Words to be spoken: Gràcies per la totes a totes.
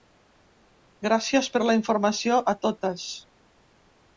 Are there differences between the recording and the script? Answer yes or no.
yes